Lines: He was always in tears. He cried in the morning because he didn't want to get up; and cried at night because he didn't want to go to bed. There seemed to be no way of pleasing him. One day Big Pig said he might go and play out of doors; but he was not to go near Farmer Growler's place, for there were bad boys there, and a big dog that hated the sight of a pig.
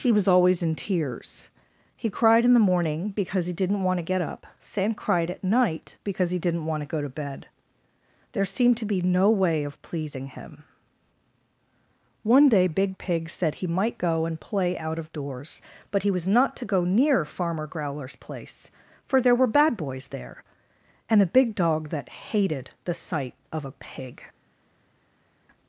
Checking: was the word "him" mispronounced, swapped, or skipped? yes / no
no